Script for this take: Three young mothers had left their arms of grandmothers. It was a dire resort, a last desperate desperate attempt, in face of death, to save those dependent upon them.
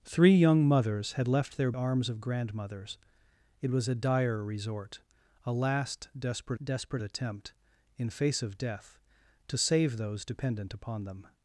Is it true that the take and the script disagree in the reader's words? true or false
false